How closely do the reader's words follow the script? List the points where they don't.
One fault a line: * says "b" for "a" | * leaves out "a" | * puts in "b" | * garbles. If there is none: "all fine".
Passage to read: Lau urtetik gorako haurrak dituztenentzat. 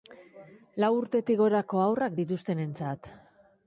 all fine